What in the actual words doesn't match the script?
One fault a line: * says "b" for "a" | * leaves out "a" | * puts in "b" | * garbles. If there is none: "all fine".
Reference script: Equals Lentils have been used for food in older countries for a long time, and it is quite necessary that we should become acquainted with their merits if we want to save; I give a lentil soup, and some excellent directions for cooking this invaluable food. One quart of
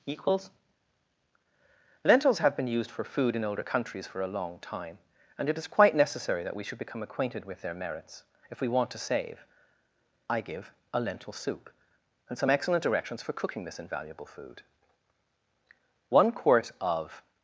all fine